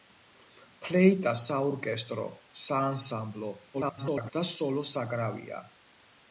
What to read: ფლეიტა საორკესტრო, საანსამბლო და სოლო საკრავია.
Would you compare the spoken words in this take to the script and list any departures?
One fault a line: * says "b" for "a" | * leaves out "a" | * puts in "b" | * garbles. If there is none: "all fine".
* garbles